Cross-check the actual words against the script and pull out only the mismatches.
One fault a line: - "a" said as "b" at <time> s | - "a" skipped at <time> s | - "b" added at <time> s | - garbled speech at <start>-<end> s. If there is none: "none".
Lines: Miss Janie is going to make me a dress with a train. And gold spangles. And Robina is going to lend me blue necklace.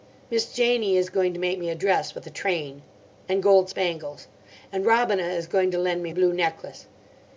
none